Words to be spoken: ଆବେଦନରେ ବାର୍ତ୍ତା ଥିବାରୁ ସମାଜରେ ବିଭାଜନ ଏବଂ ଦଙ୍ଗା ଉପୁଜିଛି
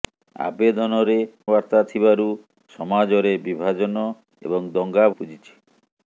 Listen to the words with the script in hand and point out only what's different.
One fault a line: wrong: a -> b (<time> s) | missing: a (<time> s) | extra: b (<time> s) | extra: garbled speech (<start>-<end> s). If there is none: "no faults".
no faults